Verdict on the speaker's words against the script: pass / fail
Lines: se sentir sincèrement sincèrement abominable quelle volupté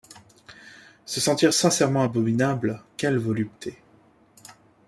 fail